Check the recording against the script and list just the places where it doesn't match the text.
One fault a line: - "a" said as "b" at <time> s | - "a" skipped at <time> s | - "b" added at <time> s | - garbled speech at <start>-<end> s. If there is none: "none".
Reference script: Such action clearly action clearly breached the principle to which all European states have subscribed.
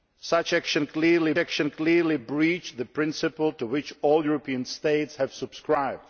none